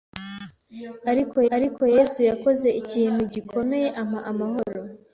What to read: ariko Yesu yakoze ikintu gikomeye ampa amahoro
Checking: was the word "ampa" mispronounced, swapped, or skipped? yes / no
no